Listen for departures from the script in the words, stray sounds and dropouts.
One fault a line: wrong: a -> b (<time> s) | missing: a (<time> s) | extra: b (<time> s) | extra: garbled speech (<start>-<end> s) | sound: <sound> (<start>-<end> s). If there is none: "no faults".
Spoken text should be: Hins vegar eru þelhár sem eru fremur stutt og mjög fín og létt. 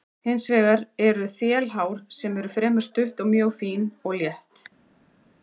no faults